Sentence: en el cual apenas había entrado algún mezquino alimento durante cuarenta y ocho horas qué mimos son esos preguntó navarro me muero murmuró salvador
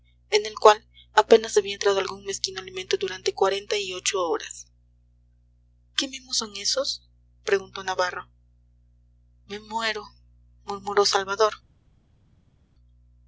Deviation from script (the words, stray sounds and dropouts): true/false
false